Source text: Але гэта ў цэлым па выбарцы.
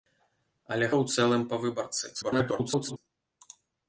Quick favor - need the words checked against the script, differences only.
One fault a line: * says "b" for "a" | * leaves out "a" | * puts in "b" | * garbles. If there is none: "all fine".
* leaves out "гэта"
* garbles